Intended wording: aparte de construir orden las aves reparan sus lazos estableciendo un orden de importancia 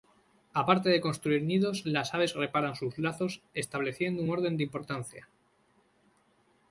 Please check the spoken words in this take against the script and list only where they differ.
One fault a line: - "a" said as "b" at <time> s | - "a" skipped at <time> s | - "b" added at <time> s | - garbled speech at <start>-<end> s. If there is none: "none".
- "orden" said as "nidos" at 1.4 s